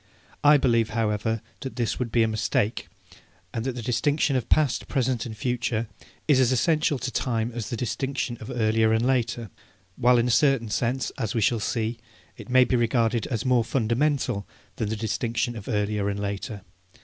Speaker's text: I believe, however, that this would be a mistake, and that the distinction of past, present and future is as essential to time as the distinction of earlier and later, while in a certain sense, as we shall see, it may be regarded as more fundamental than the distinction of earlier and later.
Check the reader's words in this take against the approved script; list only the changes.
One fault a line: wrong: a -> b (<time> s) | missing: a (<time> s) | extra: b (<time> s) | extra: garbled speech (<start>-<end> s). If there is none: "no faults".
no faults